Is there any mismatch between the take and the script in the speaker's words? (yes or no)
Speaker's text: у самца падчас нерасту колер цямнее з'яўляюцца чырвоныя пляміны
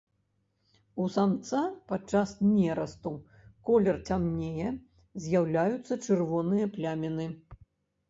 no